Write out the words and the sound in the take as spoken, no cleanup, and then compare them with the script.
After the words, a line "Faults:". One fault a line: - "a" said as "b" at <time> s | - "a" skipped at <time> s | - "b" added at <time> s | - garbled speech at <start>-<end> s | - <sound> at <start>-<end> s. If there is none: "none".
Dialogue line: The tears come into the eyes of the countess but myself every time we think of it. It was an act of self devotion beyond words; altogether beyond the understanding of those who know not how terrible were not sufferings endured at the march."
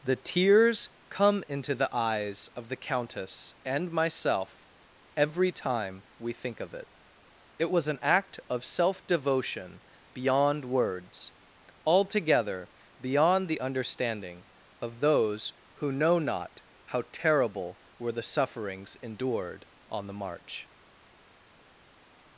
The tears come into the eyes of the countess and myself every time we think of it. It was an act of self devotion beyond words; altogether beyond the understanding of those who know not how terrible were the sufferings endured on the march."
Faults:
- "but" said as "and" at 3.6 s
- "not" said as "the" at 18.1 s
- "at" said as "on" at 19.9 s